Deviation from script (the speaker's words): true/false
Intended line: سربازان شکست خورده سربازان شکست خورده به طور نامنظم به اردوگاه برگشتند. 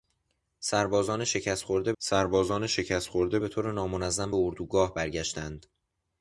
false